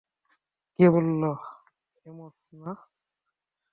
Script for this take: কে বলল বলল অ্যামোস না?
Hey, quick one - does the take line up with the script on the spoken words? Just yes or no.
no